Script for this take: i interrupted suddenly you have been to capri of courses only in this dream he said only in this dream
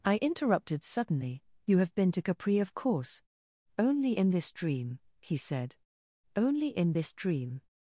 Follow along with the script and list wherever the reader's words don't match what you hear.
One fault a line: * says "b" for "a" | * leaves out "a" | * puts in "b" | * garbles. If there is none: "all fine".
* says "course" for "courses"